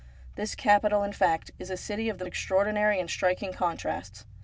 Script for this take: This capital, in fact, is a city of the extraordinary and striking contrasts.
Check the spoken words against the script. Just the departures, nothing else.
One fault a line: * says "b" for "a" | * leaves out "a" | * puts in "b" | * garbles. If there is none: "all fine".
all fine